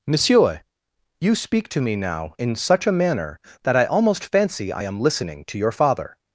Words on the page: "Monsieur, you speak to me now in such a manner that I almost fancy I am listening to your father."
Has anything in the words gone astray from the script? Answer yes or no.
no